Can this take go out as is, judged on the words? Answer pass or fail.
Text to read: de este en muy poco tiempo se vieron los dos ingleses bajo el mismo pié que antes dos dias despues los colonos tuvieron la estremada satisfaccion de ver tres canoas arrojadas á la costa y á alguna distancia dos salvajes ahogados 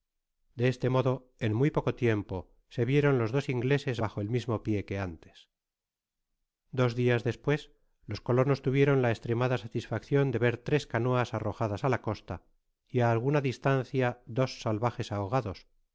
fail